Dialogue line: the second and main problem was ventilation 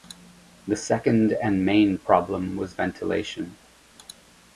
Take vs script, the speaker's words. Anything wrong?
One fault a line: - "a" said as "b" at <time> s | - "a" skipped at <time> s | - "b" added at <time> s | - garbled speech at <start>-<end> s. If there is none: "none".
none